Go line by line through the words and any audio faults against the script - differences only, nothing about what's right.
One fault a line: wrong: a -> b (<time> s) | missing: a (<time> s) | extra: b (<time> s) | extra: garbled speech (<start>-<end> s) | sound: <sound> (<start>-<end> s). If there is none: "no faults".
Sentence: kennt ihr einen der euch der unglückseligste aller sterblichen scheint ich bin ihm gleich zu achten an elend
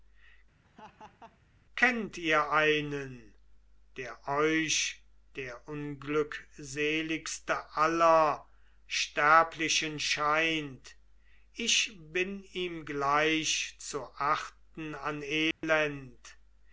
sound: laugh (0.6-1.4 s)
sound: dropout (15.5-15.6 s)